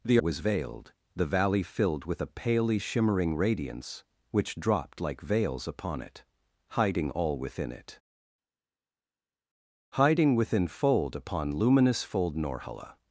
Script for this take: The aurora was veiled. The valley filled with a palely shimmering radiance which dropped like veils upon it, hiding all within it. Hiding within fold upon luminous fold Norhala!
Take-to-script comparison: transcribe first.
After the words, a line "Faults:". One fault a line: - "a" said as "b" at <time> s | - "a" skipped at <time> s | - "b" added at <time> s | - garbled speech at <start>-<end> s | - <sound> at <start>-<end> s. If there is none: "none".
The was veiled. The valley filled with a palely shimmering radiance which dropped like veils upon it, hiding all within it. Hiding within fold upon luminous fold Norhala!
Faults:
- "aurora" skipped at 0.2 s